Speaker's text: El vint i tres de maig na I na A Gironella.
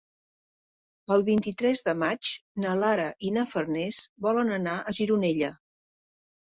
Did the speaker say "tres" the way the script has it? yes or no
yes